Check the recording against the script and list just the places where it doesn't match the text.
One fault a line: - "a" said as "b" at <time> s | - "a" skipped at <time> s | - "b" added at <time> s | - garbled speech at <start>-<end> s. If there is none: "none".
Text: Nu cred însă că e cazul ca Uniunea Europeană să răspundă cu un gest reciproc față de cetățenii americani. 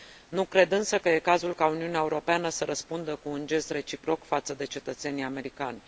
none